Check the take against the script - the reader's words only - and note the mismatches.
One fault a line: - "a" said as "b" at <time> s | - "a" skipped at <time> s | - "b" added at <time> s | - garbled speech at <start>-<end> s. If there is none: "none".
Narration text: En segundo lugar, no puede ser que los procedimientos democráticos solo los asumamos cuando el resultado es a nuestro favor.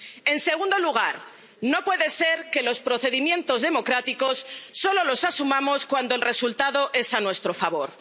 none